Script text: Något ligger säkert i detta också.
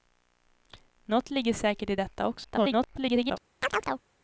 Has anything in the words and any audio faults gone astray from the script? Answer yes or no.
yes